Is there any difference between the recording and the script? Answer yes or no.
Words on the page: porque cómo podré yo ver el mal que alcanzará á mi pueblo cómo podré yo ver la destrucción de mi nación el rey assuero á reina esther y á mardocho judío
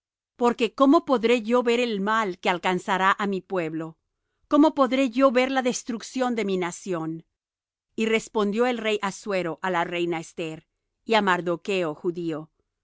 yes